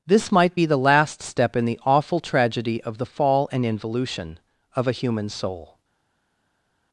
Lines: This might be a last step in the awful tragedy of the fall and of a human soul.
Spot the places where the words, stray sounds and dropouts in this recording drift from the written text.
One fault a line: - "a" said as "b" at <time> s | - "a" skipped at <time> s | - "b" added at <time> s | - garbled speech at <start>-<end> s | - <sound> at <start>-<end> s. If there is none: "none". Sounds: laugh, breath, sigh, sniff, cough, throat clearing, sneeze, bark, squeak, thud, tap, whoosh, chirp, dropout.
- "a" said as "the" at 0.6 s
- "involution" added at 3.6 s